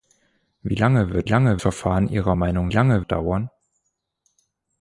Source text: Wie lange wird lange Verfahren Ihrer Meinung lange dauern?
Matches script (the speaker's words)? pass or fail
pass